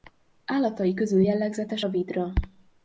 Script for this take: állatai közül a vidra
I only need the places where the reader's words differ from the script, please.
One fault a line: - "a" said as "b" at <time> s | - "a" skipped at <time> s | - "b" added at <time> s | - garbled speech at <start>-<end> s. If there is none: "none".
- "jellegzetes" added at 1.2 s